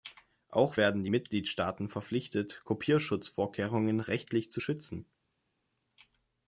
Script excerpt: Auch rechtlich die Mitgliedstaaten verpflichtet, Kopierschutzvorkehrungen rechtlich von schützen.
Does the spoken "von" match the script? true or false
false